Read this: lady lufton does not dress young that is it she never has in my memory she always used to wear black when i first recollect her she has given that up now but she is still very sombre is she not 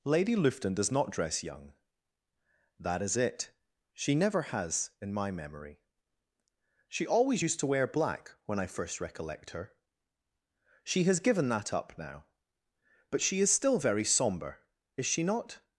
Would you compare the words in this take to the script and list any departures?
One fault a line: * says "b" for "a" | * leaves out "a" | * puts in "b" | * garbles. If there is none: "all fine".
all fine